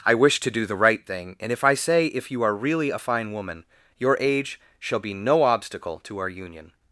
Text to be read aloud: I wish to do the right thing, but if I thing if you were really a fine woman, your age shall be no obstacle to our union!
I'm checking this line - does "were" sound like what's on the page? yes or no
no